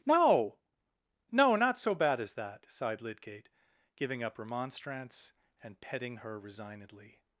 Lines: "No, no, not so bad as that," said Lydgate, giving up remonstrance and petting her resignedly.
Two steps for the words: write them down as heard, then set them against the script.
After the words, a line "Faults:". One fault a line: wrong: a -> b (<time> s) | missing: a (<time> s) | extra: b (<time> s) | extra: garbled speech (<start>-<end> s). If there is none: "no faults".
"No, no, not so bad as that," sighed Lydgate, giving up remonstrance and petting her resignedly.
Faults:
wrong: said -> sighed (2.7 s)